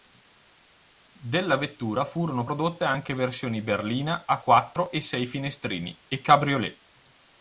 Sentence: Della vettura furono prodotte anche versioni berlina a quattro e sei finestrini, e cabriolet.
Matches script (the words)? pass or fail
pass